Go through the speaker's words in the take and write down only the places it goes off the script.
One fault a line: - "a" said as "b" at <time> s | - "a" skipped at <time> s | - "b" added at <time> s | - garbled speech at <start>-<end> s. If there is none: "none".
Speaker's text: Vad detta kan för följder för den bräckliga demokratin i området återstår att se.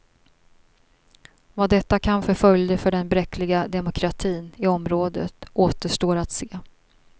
none